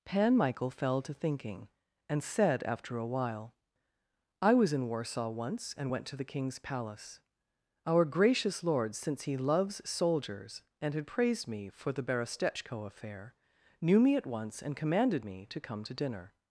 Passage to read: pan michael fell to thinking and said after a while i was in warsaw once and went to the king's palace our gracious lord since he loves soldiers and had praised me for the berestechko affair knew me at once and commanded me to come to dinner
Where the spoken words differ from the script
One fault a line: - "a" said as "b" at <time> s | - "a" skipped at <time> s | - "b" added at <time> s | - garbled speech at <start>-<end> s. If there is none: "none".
none